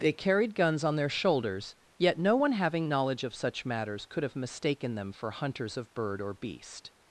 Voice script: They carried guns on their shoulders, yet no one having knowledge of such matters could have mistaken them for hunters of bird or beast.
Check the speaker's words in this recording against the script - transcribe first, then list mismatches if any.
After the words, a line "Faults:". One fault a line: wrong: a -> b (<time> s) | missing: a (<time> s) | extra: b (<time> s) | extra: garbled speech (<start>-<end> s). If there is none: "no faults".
They carried guns on their shoulders, yet no one having knowledge of such matters could have mistaken them for hunters of bird or beast.
Faults:
no faults